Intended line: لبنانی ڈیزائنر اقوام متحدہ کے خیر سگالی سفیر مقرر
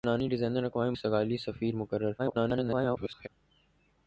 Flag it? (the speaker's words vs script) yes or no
yes